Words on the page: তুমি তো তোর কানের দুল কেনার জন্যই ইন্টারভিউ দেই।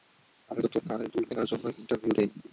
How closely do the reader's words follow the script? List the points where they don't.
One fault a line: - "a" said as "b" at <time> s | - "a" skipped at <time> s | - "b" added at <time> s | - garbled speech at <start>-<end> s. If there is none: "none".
- "তুমি" said as "আমি" at 0.5 s